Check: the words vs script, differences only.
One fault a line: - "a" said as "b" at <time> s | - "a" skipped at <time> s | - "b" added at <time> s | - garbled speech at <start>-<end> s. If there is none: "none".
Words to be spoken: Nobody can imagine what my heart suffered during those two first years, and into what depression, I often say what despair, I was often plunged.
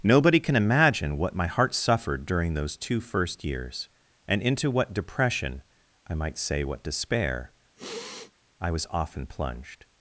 - "often" said as "might" at 6.2 s